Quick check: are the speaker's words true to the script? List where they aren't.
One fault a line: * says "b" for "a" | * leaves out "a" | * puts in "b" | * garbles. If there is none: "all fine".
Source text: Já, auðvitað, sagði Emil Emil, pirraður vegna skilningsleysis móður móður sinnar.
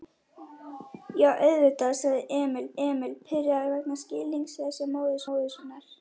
all fine